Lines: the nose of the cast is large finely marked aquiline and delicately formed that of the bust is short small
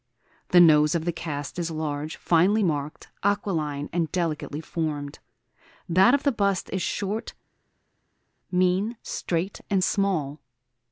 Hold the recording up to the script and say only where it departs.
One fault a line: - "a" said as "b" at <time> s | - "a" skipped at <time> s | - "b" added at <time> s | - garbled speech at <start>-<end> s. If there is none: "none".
- "mean straight and" added at 8.5 s